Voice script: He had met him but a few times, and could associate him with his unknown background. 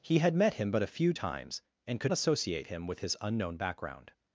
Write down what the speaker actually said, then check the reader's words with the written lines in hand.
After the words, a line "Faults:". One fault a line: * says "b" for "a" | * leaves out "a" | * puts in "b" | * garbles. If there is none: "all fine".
He had met him but a few times, and could associate him with his unknown background.
Faults:
all fine